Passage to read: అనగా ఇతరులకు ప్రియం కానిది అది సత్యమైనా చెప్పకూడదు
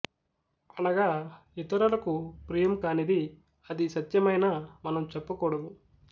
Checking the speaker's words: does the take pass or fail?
fail